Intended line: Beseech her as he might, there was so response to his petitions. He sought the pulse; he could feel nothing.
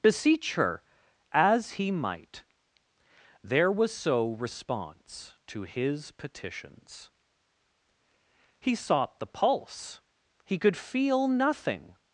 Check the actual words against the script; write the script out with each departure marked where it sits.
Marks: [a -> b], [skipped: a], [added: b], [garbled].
Beseech her as he might, there was so response to his petitions. He sought the pulse; he could feel nothing.